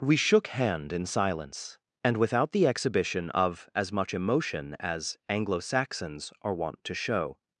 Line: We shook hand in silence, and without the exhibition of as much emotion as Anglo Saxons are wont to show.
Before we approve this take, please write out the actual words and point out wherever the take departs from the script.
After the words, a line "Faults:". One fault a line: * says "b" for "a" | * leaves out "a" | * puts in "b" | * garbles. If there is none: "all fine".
We shook hand in silence, and without the exhibition of as much emotion as Anglo Saxons are wont to show.
Faults:
all fine